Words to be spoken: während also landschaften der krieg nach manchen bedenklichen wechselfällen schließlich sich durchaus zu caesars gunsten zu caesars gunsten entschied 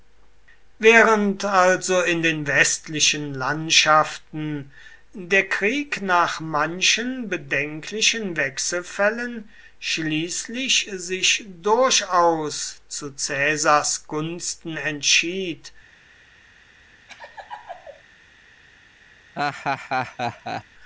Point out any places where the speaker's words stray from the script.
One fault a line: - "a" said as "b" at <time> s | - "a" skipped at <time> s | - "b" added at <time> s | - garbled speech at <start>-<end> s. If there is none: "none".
- "in den westlichen" added at 2.0 s
- "zu caesars gunsten" skipped at 14.8 s